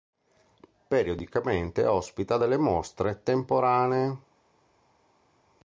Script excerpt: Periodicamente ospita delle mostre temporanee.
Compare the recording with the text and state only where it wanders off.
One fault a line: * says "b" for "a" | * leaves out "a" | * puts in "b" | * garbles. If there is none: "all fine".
all fine